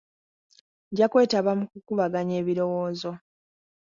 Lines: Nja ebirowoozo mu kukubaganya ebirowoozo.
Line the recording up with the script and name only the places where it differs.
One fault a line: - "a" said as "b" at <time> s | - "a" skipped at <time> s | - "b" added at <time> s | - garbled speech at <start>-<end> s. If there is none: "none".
- "ebirowoozo" said as "kwetaba" at 1.1 s